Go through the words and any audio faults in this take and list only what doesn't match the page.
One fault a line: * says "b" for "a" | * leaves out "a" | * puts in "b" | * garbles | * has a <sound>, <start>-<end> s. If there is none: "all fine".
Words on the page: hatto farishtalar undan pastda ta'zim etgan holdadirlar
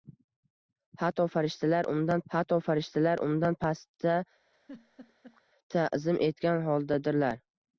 * puts in "hatto farishtalar undan"
* has a laugh, 4.5-5.4 s